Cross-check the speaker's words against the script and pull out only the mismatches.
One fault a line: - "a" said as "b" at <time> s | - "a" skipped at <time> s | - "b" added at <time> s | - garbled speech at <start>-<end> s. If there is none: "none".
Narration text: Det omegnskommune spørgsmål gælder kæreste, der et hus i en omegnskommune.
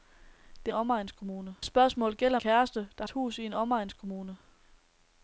none